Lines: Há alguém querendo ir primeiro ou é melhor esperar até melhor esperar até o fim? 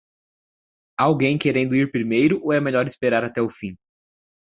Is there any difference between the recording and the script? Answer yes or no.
yes